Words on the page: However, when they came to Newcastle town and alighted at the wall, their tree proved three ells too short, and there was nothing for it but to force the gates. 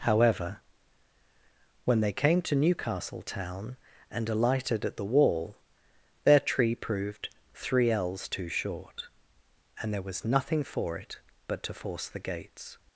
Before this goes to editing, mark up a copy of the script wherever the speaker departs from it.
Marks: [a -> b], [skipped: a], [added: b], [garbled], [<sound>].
However, when they came to Newcastle town and alighted at the wall, their tree proved three ells too short, and there was nothing for it but to force the gates.